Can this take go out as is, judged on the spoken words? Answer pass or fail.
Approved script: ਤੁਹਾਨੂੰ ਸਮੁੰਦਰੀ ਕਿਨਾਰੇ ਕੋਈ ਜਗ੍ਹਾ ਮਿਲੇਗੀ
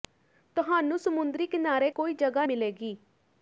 pass